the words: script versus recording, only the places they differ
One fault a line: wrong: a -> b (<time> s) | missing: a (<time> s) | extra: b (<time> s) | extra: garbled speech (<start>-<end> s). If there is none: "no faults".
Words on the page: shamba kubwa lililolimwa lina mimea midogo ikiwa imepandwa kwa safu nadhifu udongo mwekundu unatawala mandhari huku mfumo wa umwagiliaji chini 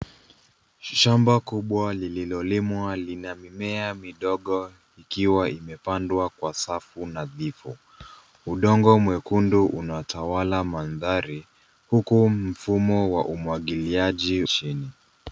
no faults